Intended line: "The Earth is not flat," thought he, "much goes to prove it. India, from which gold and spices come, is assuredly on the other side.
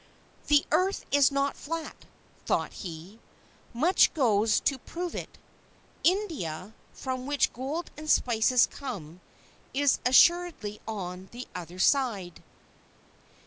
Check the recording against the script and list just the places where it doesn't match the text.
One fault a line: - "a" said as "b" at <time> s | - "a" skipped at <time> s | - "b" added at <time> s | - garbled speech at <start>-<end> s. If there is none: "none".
none